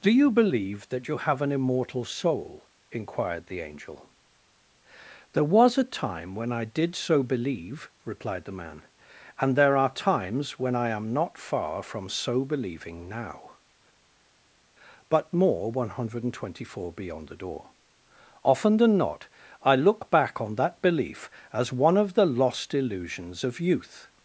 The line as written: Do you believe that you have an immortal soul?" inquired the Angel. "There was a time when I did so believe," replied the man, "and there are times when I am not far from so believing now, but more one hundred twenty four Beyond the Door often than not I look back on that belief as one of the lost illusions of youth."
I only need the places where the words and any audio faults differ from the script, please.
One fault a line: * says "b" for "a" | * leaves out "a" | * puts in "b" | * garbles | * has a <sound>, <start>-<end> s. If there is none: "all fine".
all fine